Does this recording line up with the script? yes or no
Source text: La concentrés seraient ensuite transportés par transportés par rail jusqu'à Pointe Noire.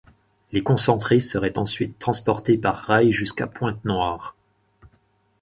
no